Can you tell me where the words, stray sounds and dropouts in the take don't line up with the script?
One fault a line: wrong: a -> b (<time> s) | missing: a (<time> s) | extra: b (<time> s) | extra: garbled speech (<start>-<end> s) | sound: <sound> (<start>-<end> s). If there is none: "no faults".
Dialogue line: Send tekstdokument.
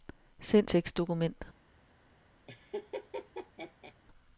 sound: laugh (2.5-3.9 s)